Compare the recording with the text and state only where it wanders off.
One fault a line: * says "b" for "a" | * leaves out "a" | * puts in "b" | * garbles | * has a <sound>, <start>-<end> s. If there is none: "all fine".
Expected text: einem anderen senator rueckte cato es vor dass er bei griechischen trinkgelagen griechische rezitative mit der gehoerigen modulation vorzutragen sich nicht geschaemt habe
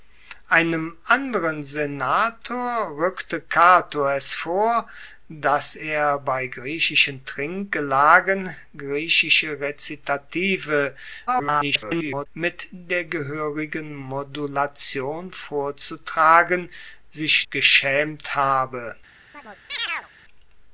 * garbles
* leaves out "nicht"
* has a chirp, 19.3-20.1 s